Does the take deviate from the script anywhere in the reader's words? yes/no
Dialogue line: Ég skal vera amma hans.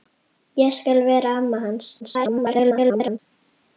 yes